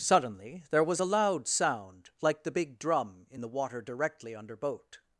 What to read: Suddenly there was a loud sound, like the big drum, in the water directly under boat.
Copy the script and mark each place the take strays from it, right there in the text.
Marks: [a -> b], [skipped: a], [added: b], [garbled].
Suddenly there was a loud sound, like the big drum, in the water directly under boat.